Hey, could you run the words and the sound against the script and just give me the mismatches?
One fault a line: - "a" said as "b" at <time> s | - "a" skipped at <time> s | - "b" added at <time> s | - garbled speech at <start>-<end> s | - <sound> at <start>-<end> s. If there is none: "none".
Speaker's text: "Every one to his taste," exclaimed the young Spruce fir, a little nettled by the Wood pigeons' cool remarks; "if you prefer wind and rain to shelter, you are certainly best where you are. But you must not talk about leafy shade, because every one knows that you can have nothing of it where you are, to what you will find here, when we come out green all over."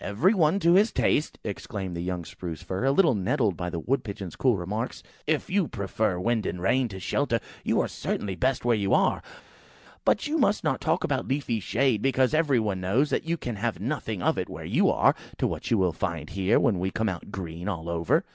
none